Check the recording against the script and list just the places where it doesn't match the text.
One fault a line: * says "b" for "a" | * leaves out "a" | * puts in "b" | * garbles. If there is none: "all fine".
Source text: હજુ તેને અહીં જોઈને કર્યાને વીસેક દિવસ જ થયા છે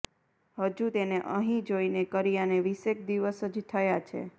all fine